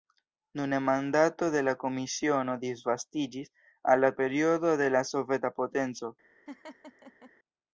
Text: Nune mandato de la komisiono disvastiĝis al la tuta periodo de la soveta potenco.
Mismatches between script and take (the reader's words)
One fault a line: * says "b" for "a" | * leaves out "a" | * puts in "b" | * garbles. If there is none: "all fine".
* leaves out "tuta"